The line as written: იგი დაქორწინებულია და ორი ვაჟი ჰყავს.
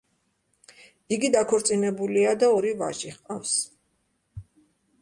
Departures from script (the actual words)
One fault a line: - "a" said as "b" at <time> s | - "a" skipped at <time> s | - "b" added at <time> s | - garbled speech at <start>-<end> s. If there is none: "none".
none